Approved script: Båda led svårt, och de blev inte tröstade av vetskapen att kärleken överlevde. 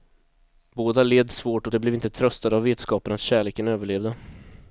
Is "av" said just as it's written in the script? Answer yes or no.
yes